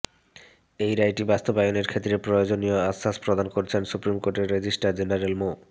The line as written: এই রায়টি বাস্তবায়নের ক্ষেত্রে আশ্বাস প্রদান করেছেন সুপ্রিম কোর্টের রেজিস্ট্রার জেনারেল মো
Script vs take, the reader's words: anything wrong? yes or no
yes